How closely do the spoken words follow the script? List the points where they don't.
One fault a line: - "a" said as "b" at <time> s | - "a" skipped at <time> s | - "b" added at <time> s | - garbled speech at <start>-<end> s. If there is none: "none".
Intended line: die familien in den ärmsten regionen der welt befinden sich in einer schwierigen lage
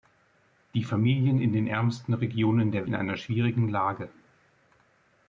- "welt befinden sich" skipped at 2.9 s